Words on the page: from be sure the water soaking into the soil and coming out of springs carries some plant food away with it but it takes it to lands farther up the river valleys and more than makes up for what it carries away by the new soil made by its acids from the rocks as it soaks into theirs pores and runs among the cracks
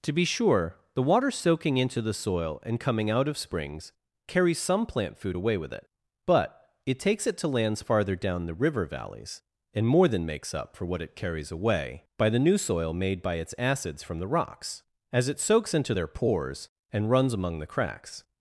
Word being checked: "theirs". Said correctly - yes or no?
no